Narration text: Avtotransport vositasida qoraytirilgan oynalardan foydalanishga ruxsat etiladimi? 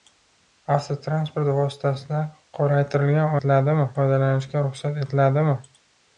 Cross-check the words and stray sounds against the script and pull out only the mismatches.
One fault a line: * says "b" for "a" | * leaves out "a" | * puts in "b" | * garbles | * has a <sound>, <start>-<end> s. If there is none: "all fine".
* says "etiladimi" for "oynalardan"